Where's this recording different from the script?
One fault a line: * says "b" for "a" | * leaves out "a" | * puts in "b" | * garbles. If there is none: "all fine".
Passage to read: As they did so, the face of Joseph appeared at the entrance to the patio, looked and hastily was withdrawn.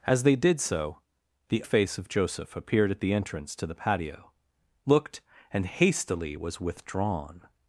all fine